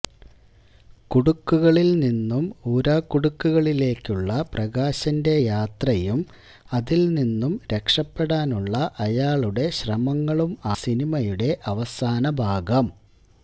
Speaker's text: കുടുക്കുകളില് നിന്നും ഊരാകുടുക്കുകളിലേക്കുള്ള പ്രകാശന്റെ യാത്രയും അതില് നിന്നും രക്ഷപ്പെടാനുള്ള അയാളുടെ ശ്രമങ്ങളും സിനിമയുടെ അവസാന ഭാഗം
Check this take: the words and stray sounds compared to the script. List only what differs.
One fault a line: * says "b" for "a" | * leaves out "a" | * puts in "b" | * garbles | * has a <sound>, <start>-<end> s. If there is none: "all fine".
all fine